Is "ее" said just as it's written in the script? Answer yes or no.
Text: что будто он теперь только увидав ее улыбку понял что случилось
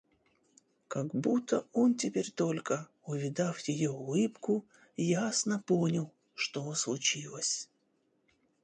yes